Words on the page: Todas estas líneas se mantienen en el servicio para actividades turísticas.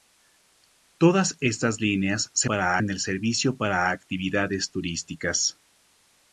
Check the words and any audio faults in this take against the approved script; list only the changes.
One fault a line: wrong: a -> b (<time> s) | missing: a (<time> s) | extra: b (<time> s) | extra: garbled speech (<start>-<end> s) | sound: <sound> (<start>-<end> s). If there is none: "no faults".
wrong: mantienen -> para (2.5 s)